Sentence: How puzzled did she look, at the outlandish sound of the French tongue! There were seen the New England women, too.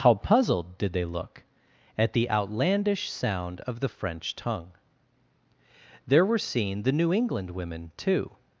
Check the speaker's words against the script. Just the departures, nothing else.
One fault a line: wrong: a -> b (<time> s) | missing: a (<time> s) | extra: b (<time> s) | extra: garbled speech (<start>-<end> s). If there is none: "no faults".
wrong: she -> they (0.9 s)